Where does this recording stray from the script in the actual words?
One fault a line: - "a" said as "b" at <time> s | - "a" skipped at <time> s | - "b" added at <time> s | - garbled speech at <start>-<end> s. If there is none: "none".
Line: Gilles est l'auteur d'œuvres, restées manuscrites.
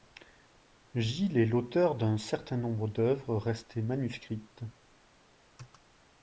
- "d'un certain nombre" added at 1.9 s